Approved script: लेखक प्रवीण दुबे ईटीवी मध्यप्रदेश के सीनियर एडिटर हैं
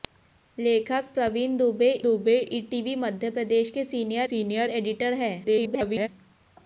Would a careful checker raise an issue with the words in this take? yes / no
yes